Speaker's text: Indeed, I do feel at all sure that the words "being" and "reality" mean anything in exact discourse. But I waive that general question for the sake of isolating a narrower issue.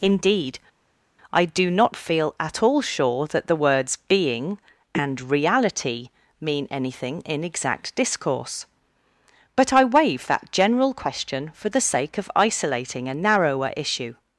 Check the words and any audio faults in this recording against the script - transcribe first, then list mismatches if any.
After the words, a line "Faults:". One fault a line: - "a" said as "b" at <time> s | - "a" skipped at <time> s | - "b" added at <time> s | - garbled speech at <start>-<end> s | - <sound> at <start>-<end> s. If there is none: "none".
Indeed, I do not feel at all sure that the words "being" and "reality" mean anything in exact discourse. But I waive that general question for the sake of isolating a narrower issue.
Faults:
- "not" added at 1.7 s